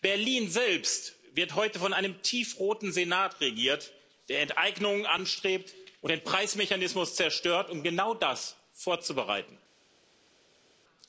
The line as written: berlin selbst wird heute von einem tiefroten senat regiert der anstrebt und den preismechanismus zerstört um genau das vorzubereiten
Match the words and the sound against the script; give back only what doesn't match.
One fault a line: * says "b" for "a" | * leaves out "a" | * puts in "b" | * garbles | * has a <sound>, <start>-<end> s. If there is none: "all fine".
* puts in "enteignungen"